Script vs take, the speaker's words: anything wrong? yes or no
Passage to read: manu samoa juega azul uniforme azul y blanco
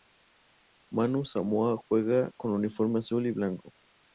yes